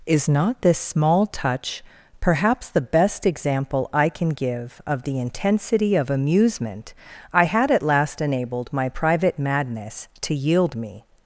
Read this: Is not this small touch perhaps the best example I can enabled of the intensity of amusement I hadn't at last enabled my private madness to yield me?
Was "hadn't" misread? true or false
true